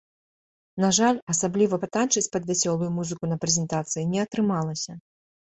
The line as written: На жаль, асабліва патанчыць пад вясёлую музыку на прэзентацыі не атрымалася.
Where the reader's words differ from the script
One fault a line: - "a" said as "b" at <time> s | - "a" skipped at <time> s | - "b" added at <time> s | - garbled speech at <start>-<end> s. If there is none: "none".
none